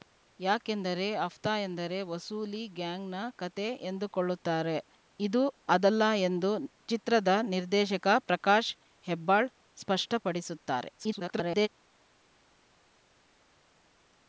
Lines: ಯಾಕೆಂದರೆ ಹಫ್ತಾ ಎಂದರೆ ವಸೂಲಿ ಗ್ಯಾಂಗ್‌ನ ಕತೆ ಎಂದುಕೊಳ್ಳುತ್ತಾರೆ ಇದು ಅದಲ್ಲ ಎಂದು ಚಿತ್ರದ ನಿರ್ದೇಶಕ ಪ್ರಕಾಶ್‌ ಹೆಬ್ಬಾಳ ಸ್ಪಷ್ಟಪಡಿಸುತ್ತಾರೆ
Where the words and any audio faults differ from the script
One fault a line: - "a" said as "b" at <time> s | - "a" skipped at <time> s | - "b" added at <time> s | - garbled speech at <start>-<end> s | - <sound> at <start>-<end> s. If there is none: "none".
- garbled speech at 11.0-11.7 s